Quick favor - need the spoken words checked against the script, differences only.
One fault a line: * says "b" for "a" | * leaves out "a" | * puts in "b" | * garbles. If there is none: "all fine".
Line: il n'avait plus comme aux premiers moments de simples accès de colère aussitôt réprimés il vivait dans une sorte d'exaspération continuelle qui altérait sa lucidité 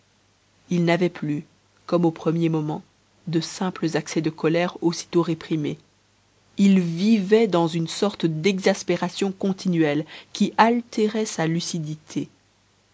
all fine